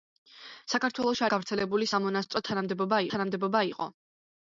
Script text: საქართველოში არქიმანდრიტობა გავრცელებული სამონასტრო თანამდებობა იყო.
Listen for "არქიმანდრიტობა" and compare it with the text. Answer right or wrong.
wrong